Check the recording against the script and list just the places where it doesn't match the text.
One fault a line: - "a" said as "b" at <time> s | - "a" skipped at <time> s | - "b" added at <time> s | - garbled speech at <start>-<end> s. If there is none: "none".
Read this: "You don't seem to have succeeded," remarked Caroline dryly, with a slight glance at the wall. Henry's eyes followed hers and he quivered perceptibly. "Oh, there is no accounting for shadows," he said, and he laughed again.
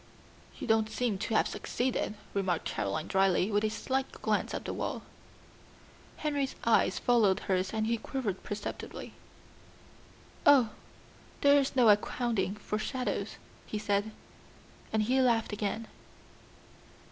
none